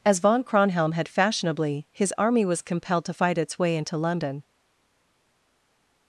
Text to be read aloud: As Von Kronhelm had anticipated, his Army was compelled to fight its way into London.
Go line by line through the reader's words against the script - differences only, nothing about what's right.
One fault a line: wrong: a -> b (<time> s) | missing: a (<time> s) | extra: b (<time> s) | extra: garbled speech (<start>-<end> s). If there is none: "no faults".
wrong: anticipated -> fashionably (1.1 s)